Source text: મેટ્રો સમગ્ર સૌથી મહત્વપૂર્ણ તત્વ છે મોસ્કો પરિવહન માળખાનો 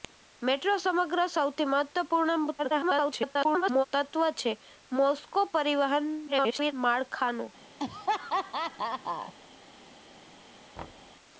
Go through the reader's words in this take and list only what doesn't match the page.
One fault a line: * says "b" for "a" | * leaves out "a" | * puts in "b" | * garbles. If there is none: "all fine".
* garbles
* garbles